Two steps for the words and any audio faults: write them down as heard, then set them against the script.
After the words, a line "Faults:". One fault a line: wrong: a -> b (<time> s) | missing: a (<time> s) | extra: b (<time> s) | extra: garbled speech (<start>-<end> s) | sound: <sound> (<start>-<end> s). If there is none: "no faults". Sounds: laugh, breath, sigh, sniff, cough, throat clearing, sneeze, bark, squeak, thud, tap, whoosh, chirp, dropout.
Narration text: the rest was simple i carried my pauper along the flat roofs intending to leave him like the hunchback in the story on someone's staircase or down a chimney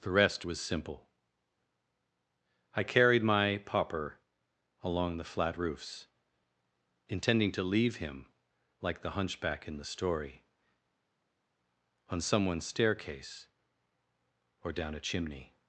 the rest was simple i carried my pauper along the flat roofs intending to leave him like the hunchback in the story on someone's staircase or down a chimney
Faults:
no faults